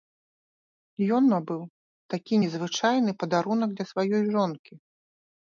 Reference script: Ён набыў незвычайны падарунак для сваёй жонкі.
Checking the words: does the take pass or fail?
fail